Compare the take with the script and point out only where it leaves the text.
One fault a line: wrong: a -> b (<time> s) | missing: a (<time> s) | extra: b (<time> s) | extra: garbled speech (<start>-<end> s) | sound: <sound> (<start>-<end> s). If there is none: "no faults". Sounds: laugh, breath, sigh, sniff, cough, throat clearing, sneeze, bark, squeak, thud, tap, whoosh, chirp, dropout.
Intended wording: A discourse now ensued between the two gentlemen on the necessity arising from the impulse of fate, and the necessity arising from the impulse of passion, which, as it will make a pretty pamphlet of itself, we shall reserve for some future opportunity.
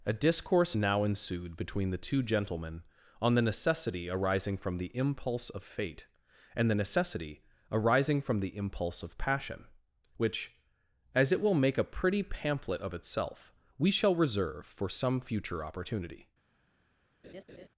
sound: laugh (17.2-17.7 s)